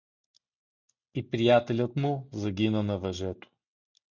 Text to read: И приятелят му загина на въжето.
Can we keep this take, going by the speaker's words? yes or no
yes